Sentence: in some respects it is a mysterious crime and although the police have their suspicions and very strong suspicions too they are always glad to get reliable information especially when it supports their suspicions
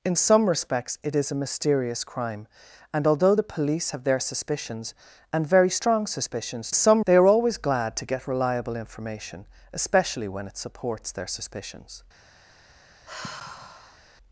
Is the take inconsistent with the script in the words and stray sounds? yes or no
yes